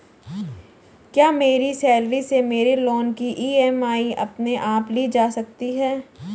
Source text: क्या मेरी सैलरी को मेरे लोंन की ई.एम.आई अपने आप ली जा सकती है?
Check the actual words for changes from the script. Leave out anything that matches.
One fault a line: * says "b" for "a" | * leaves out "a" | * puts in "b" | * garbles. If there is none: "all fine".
* says "से" for "को"